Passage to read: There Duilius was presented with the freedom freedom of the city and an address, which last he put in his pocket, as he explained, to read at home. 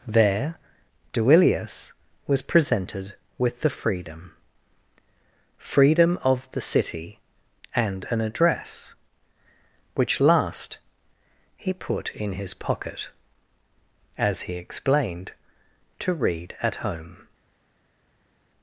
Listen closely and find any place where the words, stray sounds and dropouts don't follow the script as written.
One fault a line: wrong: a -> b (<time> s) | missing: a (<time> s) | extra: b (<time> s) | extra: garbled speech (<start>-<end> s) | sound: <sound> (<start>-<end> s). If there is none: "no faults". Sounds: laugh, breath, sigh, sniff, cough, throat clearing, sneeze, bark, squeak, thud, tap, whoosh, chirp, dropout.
no faults